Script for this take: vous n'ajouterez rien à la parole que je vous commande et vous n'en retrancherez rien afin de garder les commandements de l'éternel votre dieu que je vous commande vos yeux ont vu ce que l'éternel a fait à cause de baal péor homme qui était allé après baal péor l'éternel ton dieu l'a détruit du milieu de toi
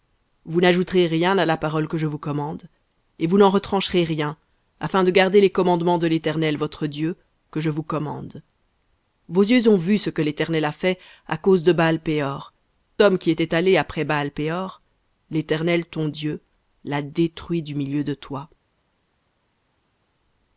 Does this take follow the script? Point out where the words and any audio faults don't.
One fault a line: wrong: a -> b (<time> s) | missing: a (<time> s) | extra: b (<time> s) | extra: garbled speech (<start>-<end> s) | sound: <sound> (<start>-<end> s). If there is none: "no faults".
no faults